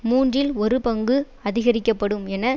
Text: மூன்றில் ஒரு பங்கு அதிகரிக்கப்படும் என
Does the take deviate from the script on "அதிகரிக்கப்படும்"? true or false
false